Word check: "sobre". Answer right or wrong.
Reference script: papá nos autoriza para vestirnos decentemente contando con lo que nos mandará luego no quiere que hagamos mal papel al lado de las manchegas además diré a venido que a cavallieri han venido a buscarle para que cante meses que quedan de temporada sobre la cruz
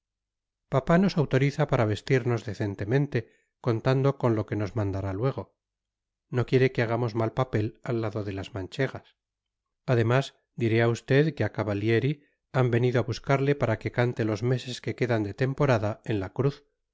wrong